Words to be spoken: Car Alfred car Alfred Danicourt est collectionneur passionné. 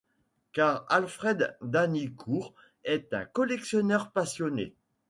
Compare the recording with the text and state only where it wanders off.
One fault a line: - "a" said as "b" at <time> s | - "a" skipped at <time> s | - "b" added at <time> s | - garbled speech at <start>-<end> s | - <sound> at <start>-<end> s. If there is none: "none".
- "car Alfred" skipped at 1.6 s
- "un" added at 3.1 s